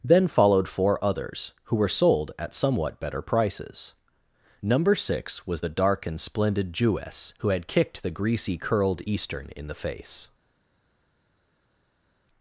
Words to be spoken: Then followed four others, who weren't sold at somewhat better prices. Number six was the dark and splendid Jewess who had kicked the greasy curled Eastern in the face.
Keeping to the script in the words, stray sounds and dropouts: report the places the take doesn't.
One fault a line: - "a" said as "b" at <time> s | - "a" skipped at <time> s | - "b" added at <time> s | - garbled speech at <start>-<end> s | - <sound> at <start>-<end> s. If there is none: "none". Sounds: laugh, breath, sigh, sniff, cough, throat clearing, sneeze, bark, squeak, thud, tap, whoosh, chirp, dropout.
- "weren't" said as "were" at 1.8 s